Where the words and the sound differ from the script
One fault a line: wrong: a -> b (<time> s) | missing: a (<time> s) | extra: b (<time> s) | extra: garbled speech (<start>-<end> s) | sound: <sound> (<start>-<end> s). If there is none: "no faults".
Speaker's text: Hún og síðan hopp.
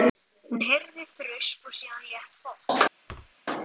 extra: heyrði þrusk (0.7 s)
extra: létt (2.1 s)
sound: thud (3.1-3.3 s)